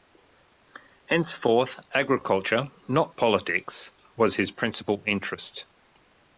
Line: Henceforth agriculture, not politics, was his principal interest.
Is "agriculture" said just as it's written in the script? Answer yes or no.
yes